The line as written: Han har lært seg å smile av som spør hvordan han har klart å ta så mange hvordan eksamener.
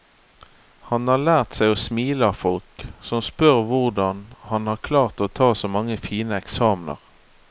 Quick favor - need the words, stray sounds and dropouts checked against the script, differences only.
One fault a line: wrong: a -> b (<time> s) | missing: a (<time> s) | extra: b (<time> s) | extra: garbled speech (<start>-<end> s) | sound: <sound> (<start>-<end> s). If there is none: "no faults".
extra: folk (2.4 s)
wrong: hvordan -> fine (6.1 s)